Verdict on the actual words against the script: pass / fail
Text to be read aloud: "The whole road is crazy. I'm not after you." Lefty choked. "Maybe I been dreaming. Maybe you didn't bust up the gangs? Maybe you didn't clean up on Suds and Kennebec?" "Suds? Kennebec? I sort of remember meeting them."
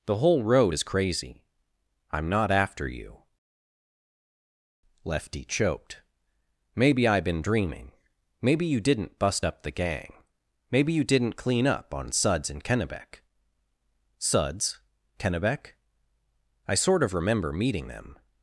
fail